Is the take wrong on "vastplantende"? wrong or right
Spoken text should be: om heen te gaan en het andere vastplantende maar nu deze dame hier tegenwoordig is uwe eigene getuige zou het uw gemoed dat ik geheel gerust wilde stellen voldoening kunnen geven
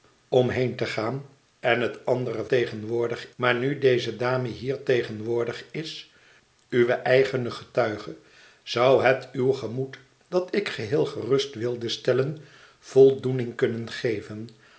wrong